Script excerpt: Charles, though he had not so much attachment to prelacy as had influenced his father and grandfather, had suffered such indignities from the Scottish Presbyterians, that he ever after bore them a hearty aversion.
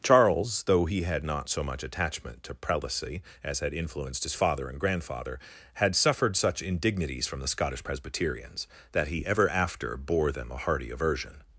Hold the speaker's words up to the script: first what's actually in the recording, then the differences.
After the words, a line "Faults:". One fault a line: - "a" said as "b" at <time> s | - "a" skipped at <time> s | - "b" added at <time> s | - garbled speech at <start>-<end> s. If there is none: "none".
Charles, though he had not so much attachment to prelacy as had influenced his father and grandfather, had suffered such indignities from the Scottish Presbyterians, that he ever after bore them a hearty aversion.
Faults:
none